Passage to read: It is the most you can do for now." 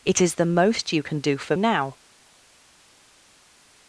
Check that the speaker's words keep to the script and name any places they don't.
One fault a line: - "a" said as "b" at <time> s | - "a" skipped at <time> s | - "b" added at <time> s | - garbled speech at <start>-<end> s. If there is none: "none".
none